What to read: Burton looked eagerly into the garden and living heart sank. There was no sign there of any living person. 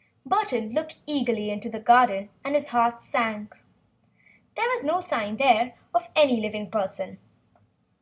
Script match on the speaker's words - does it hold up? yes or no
no